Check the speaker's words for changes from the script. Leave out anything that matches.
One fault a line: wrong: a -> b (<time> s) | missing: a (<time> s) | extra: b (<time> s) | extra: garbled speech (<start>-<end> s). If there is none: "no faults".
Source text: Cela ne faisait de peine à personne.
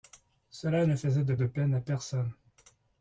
extra: de (1.3 s)